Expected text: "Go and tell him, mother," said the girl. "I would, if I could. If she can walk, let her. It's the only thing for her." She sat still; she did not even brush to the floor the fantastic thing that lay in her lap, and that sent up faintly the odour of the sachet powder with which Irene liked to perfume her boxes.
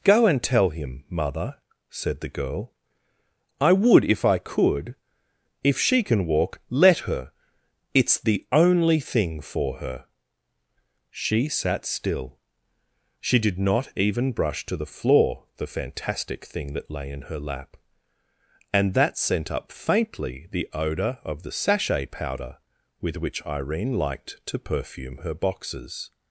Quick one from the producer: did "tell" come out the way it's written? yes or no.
yes